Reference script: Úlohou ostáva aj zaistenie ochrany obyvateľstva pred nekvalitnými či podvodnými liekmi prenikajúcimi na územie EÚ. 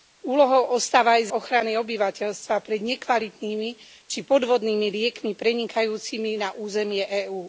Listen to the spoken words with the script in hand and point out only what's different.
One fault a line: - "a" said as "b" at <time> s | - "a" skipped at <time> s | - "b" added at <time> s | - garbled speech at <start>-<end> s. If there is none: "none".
- "zaistenie" skipped at 1.3 s